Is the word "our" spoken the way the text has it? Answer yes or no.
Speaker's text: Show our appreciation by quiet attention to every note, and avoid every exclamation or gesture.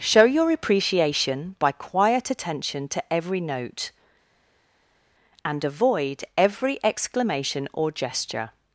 no